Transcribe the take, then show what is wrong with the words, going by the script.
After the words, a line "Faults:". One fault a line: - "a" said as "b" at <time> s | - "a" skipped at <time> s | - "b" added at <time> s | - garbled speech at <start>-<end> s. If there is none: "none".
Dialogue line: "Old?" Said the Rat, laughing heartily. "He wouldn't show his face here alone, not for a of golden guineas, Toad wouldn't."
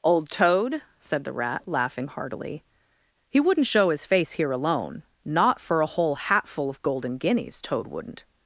"Old Toad?" said the Rat, laughing heartily. "He wouldn't show his face here alone, not for a whole hatful of golden guineas, Toad wouldn't."
Faults:
- "Toad" added at 0.3 s
- "whole hatful" added at 5.8 s